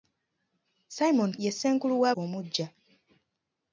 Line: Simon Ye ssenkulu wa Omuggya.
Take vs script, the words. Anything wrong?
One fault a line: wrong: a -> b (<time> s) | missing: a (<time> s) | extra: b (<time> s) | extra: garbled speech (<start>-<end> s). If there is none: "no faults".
no faults